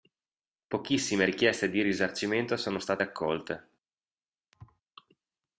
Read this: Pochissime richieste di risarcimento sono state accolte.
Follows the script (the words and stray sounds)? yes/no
no